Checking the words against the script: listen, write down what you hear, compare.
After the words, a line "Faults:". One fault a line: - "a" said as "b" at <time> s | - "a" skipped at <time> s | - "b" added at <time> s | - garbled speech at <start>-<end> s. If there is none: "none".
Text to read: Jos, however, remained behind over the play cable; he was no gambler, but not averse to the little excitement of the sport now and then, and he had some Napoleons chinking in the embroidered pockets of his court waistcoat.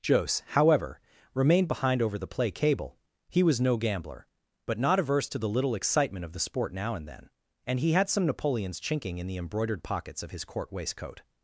Jos, however, remained behind over the play cable; he was no gambler, but not averse to the little excitement of the sport now and then, and he had some Napoleons chinking in the embroidered pockets of his court waistcoat.
Faults:
none